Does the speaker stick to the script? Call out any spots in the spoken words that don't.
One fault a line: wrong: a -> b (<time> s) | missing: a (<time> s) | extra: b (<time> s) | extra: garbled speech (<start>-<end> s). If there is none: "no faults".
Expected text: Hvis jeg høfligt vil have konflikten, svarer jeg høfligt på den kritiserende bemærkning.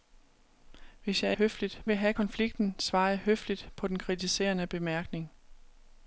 no faults